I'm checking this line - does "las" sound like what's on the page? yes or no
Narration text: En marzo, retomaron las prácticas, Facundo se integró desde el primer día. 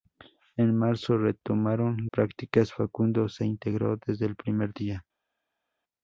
no